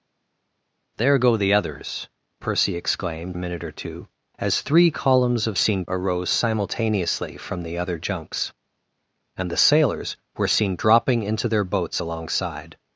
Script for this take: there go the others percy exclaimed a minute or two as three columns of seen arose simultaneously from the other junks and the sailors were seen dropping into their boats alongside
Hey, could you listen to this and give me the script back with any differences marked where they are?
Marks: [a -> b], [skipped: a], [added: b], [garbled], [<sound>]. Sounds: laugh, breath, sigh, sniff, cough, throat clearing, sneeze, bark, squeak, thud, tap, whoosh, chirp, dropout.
there go the others percy exclaimed a minute or two as three columns of seen arose simultaneously from the other junks and the sailors were seen dropping into their boats alongside